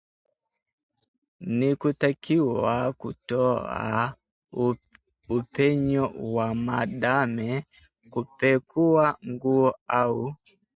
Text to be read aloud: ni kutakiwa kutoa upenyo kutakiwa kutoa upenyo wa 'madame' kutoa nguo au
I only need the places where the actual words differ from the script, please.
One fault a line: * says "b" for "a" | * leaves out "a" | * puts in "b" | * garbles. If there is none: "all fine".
* leaves out "kutakiwa kutoa upenyo"
* says "kupekua" for "kutoa"